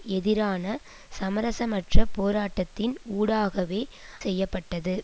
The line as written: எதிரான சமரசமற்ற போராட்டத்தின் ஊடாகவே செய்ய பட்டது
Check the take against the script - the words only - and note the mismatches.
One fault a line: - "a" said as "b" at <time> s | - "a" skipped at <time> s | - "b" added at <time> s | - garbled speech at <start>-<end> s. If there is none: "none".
none